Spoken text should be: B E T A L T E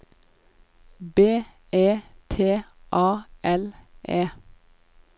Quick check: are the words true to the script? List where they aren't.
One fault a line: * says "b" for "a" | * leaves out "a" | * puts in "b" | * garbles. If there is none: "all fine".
* leaves out "T"